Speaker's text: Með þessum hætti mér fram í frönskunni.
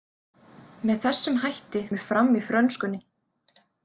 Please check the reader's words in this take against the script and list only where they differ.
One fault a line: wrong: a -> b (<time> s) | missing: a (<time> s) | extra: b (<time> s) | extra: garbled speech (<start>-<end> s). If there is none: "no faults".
no faults